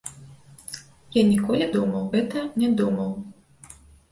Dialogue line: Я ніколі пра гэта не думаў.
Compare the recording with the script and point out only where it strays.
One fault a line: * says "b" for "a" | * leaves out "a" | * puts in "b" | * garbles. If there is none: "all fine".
* says "думаў" for "пра"